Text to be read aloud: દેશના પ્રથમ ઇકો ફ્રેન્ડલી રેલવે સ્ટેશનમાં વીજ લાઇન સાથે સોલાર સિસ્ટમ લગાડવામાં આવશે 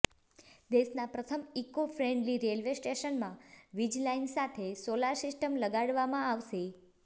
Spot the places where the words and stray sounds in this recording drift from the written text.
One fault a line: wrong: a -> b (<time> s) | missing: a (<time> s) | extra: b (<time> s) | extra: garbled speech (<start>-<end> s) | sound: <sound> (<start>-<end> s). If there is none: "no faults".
no faults